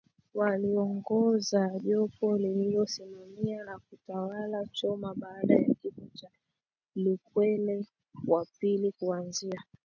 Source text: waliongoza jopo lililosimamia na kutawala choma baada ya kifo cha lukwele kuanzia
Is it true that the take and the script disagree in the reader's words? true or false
true